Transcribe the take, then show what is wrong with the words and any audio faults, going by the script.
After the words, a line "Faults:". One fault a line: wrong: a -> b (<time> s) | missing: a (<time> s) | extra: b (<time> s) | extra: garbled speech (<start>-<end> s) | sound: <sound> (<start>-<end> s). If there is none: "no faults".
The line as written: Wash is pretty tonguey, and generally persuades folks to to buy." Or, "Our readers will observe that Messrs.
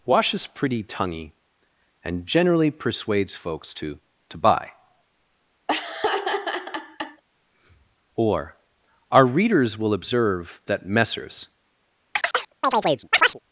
Wash is pretty tonguey, and generally persuades folks to to buy." Or, "Our readers will observe that Messrs.
Faults:
sound: laugh (5.7-7.2 s)
sound: chirp (12.1-13.4 s)